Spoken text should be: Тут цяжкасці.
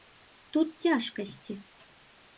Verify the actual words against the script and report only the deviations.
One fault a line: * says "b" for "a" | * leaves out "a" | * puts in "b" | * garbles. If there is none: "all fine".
all fine